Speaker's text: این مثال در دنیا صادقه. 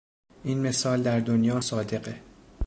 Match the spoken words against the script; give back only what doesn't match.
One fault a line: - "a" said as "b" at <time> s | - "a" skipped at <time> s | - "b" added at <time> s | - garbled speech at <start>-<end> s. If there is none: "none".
none